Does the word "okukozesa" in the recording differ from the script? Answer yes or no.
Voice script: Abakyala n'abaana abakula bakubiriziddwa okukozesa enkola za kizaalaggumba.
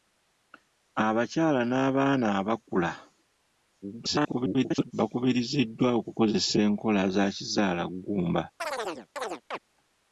no